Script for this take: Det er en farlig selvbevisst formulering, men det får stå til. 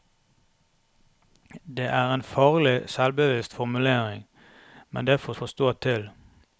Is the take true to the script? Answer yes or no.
no